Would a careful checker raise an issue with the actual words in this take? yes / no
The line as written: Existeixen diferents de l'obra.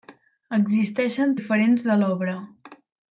no